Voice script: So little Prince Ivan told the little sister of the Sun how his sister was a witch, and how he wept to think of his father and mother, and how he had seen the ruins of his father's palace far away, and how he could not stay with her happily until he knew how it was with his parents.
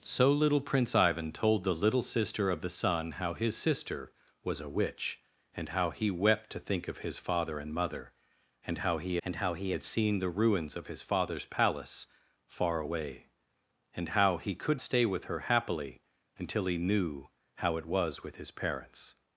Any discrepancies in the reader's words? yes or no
yes